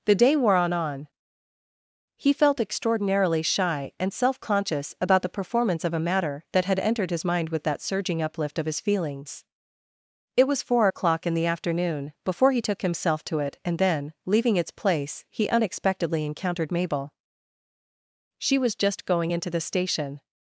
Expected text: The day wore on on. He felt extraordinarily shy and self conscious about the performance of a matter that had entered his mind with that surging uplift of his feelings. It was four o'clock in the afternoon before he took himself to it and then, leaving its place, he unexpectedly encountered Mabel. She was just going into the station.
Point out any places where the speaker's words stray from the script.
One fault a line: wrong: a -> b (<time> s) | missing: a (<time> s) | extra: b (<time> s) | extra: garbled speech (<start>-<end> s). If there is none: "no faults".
no faults